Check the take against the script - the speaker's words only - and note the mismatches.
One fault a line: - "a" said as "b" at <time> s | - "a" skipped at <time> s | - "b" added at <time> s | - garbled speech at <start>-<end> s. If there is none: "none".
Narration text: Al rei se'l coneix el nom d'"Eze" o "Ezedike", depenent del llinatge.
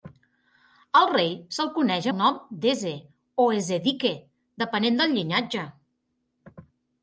none